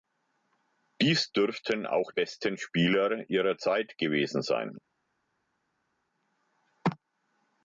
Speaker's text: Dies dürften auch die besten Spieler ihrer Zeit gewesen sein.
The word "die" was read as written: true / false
false